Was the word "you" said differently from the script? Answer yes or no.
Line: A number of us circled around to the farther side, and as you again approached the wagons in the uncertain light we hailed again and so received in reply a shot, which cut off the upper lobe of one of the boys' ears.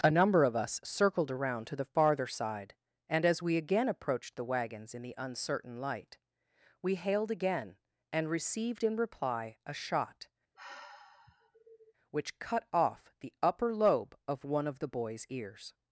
yes